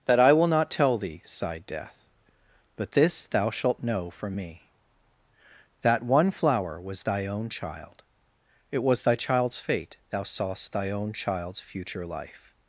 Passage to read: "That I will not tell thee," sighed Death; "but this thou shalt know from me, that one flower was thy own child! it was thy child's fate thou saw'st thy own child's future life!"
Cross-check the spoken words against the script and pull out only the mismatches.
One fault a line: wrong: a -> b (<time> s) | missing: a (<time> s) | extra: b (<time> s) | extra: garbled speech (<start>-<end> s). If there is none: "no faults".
no faults